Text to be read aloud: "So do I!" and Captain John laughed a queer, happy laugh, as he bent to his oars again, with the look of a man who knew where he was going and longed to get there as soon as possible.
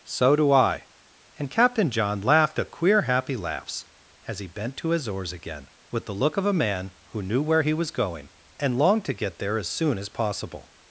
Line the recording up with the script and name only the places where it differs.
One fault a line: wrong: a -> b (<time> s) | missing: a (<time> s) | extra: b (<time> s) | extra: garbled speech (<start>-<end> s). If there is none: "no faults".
wrong: laugh -> laughs (3.4 s)